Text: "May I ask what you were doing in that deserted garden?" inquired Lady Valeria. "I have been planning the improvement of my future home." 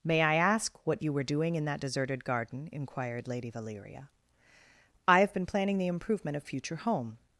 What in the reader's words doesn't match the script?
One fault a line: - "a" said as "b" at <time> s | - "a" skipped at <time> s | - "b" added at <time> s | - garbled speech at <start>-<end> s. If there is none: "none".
- "my" skipped at 6.5 s